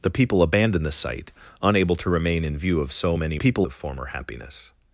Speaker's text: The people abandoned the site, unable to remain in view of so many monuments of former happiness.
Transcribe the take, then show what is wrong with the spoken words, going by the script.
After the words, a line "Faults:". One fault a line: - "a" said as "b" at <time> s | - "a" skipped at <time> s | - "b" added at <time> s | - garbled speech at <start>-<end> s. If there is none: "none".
The people abandoned the site, unable to remain in view of so many people of former happiness.
Faults:
- "monuments" said as "people" at 3.3 s